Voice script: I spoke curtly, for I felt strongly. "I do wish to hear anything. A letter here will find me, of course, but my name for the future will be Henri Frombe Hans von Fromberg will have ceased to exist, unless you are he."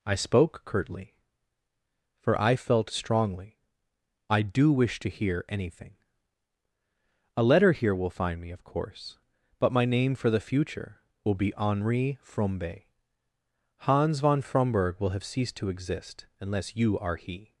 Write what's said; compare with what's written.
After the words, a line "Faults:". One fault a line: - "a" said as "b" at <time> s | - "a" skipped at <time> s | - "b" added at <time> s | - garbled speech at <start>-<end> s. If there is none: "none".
I spoke curtly, for I felt strongly. "I do wish to hear anything. A letter here will find me, of course, but my name for the future will be Henri Frombe Hans von Fromberg will have ceased to exist, unless you are he."
Faults:
none